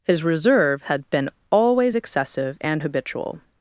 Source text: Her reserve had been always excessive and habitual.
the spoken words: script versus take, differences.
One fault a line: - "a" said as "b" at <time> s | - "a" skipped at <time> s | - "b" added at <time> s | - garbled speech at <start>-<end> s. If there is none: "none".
- "Her" said as "His" at 0.0 s